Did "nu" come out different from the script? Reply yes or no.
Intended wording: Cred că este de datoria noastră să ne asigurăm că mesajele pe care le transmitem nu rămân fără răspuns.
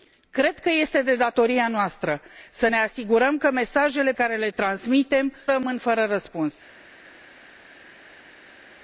yes